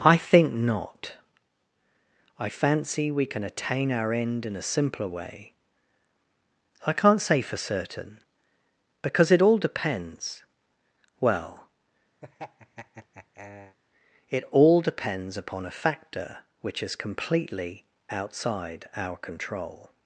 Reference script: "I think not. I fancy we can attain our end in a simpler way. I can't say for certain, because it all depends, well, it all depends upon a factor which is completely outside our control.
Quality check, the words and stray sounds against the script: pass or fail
fail